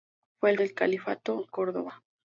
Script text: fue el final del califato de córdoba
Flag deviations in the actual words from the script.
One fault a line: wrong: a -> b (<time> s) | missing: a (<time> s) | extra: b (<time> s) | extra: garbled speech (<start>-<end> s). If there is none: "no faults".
missing: final (0.6 s)
missing: de (1.5 s)